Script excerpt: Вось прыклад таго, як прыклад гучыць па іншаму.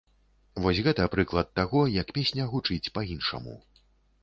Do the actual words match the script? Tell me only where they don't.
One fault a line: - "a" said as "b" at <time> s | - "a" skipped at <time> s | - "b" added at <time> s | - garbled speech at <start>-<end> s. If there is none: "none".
- "гэта" added at 0.9 s
- "прыклад" said as "песня" at 2.2 s